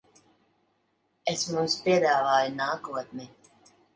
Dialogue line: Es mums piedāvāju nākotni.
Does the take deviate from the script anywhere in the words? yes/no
no